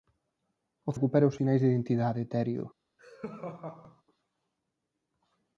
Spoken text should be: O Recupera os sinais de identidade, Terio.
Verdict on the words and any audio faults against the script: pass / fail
fail